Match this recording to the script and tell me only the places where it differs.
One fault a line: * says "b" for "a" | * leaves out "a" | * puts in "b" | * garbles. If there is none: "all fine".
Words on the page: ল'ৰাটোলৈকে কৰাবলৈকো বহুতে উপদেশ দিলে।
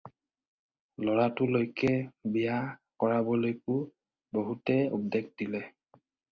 * puts in "বিয়া"